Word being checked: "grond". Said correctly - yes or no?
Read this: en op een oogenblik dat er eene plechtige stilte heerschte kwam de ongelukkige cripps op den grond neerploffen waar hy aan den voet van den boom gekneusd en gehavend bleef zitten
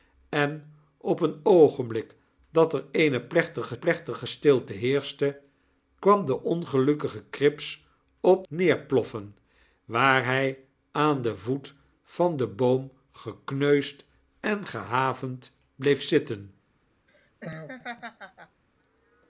no